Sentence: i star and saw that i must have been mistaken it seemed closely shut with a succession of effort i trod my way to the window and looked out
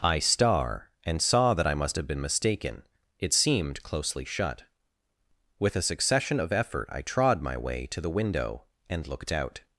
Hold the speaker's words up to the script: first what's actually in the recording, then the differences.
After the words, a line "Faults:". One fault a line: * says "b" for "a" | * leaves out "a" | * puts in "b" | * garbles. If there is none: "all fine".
i star and saw that i must have been mistaken it seemed closely shut with a succession of effort i trod my way to the window and looked out
Faults:
all fine